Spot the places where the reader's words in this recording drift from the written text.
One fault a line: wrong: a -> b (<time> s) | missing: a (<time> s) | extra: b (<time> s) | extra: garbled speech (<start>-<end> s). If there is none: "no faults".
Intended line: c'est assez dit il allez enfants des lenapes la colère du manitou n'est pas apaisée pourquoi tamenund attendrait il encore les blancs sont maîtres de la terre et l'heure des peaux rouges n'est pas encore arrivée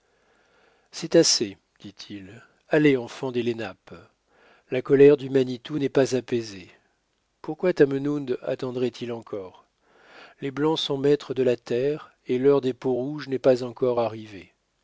no faults